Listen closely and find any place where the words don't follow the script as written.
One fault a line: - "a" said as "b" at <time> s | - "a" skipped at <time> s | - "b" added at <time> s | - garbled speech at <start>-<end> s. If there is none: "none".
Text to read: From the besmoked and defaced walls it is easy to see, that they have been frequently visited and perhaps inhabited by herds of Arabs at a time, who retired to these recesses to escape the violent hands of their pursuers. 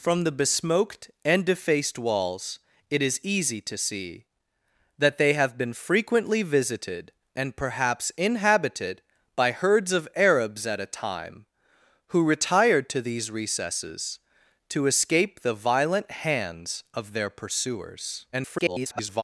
- garbled speech at 18.3-19.2 s